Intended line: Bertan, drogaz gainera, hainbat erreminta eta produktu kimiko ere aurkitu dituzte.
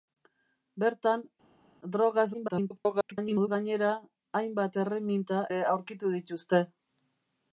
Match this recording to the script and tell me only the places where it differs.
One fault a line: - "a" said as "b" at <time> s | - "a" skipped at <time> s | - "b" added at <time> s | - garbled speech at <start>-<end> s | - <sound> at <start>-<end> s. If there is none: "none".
- garbled speech at 2.3-3.5 s
- "eta produktu kimiko" skipped at 5.4 s